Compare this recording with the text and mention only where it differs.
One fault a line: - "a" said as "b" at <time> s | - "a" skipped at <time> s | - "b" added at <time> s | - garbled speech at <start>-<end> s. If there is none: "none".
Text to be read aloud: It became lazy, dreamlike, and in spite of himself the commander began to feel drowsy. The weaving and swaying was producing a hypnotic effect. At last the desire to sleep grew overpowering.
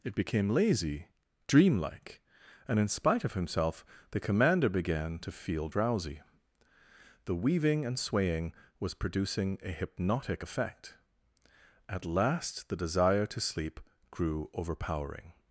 none